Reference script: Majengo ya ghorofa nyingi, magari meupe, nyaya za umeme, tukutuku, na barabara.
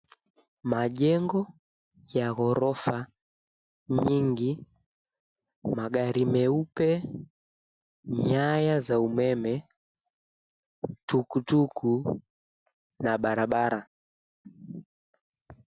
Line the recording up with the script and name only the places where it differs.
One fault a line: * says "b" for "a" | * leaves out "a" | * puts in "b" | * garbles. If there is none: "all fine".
all fine